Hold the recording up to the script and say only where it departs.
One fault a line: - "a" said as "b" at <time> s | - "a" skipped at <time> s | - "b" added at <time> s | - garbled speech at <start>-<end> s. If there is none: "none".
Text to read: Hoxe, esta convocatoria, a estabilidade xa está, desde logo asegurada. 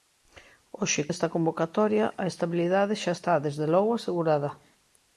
none